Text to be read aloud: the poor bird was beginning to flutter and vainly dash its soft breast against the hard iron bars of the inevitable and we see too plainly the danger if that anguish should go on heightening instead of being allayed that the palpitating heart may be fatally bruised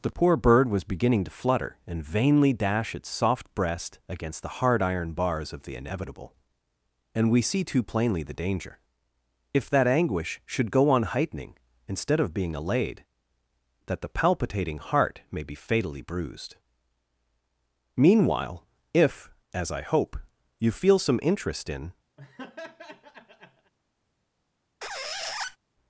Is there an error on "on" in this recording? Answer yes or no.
no